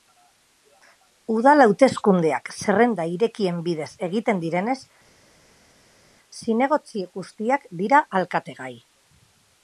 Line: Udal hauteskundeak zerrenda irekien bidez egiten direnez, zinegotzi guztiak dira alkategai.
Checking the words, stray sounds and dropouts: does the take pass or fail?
pass